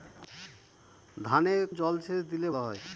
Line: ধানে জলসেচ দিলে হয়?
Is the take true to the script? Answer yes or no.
yes